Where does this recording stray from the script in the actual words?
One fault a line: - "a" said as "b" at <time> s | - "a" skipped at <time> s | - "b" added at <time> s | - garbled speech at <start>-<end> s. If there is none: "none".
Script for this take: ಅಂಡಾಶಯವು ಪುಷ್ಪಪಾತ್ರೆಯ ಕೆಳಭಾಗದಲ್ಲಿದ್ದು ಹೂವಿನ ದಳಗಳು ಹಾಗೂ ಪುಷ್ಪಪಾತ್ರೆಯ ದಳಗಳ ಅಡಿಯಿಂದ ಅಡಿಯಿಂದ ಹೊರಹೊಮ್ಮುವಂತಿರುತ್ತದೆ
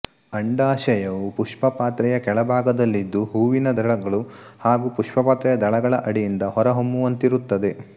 - "ಅಡಿಯಿಂದ" skipped at 6.4 s